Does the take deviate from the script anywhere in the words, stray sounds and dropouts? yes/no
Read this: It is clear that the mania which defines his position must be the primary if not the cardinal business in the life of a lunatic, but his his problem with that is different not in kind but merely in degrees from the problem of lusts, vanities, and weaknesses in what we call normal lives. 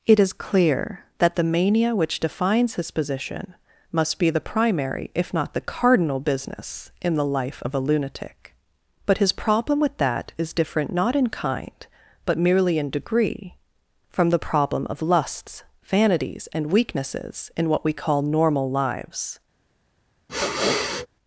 yes